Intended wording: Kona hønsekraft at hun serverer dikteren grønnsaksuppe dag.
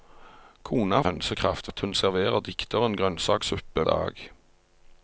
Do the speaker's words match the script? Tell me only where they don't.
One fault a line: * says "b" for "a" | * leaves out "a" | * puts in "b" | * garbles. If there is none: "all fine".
all fine